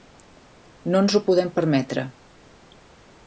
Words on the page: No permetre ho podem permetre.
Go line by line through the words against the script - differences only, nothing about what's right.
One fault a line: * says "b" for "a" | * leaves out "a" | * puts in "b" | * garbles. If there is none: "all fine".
* says "ens" for "permetre"